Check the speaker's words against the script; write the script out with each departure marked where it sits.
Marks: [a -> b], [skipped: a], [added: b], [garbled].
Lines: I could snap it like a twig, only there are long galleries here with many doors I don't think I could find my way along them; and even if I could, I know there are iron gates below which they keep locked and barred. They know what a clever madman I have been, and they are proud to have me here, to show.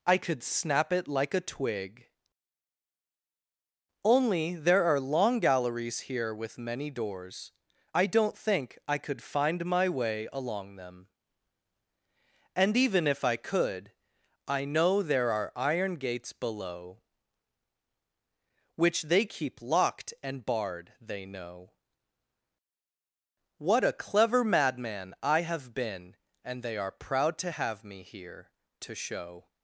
I could snap it like a twig, only there are long galleries here with many doors I don't think I could find my way along them; and even if I could, I know there are iron gates below which they keep locked and barred. They know what a clever madman I have been, and they are proud to have me here, to show.